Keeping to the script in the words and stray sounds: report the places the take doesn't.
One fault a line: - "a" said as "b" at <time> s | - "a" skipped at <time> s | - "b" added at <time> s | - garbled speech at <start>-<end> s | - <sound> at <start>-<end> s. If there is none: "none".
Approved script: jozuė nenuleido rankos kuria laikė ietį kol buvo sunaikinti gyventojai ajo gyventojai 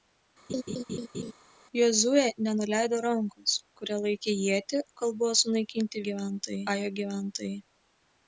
- laugh at 0.5-1.3 s